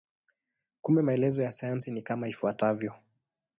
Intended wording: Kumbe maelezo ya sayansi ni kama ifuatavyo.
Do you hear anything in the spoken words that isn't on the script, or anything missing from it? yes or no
no